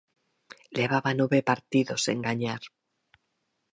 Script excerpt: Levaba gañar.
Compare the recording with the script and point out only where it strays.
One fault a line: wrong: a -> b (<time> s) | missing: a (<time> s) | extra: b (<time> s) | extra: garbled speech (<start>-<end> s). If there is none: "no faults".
extra: nove partidos sen (1.2 s)